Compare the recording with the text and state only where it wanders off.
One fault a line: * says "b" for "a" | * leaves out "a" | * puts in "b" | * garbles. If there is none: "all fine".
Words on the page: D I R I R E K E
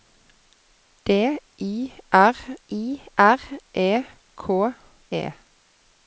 all fine